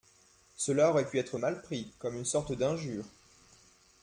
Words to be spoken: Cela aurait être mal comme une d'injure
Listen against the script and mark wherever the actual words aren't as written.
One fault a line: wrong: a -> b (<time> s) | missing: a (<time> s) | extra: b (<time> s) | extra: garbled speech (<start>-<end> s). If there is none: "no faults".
extra: pu (1.0 s)
extra: pris (1.6 s)
extra: sorte (2.2 s)